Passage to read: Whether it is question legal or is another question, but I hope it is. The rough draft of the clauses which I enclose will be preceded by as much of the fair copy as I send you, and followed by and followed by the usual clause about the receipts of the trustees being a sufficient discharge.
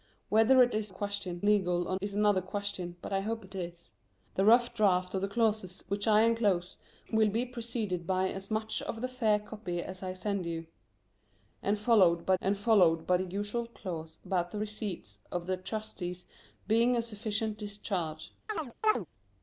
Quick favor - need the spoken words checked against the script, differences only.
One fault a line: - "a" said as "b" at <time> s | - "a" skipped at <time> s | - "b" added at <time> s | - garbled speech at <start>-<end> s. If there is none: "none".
none